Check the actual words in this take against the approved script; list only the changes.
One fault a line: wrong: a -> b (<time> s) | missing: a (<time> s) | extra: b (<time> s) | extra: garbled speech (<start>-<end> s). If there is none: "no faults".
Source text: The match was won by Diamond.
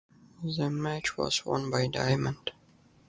no faults